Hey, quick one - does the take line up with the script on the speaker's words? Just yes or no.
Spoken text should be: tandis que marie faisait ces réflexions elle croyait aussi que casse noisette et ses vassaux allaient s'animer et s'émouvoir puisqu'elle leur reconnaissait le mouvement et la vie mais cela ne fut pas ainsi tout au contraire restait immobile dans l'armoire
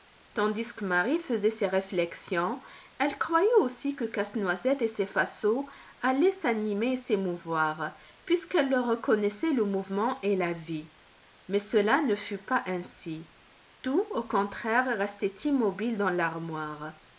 yes